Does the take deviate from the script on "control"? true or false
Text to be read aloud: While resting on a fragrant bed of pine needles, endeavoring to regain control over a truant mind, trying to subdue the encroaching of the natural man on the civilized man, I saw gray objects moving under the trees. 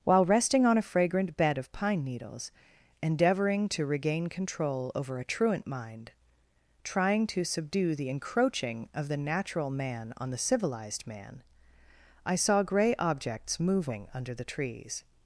false